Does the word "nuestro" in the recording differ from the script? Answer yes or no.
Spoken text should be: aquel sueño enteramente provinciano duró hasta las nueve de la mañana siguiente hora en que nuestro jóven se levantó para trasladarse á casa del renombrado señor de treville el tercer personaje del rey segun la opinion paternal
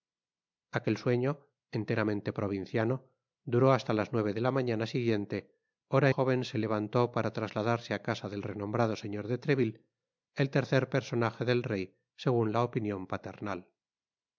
yes